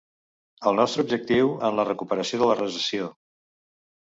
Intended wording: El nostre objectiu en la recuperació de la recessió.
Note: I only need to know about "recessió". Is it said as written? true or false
true